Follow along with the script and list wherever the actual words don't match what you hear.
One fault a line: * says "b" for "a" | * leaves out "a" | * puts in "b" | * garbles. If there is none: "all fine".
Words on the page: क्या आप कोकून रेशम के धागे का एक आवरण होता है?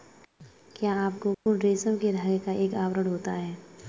all fine